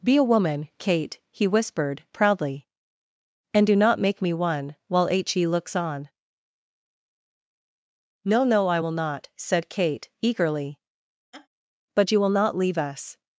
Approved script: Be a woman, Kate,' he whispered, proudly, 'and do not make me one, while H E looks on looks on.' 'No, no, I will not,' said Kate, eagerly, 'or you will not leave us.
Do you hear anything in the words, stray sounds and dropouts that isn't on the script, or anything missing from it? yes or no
yes